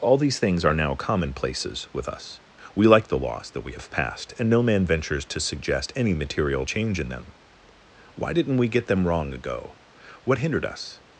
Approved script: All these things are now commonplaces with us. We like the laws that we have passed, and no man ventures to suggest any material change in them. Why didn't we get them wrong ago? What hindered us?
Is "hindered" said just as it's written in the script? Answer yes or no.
yes